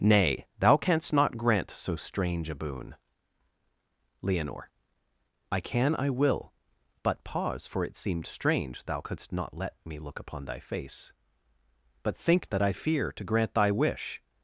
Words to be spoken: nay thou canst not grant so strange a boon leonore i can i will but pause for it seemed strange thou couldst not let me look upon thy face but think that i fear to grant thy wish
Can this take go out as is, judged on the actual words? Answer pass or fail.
pass